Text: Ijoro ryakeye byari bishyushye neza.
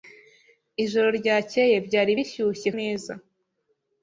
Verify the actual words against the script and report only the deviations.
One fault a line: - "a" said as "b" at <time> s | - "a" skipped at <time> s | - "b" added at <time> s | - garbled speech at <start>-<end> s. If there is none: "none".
none